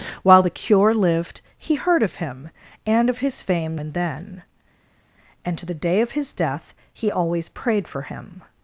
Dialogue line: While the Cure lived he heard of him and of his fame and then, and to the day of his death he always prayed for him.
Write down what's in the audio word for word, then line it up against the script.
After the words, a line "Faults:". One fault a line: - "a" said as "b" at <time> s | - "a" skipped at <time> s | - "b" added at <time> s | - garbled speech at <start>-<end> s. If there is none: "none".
While the Cure lived he heard of him and of his fame and then, and to the day of his death he always prayed for him.
Faults:
none